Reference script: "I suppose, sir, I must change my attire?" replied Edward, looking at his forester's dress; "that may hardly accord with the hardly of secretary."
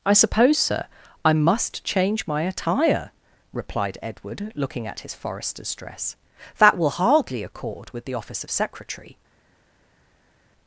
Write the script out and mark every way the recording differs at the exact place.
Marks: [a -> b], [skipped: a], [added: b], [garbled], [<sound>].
"I suppose, sir, I must change my attire?" replied Edward, looking at his forester's dress; "that [may -> will] hardly accord with the [hardly -> office] of secretary."